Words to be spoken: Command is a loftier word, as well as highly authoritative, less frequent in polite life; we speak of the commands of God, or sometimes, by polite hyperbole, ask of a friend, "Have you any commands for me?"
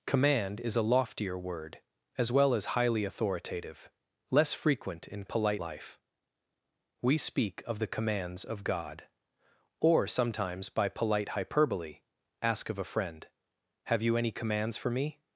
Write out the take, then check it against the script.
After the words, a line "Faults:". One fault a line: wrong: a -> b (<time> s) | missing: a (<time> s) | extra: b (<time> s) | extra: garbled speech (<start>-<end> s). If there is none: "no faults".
Command is a loftier word, as well as highly authoritative, less frequent in polite life; we speak of the commands of God, or sometimes, by polite hyperbole, ask of a friend, "Have you any commands for me?"
Faults:
no faults